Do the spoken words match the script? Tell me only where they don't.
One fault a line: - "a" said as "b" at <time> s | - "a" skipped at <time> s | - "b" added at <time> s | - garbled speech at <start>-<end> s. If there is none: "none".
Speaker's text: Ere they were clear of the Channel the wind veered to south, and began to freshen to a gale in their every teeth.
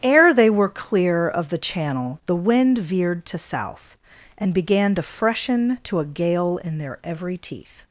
none